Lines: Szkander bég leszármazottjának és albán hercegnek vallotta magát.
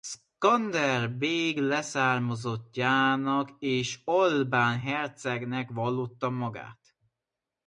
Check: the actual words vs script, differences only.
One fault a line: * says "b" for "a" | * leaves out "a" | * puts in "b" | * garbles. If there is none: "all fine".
all fine